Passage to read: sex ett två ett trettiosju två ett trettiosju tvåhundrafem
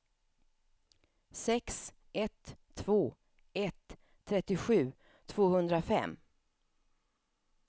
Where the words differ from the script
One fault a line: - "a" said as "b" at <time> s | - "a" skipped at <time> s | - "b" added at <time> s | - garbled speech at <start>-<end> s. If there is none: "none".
- "två ett trettiosju" skipped at 4.9 s